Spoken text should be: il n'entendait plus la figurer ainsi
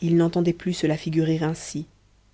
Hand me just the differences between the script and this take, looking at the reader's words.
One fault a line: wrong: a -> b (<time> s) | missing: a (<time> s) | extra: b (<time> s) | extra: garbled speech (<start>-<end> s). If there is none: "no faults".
extra: se (0.7 s)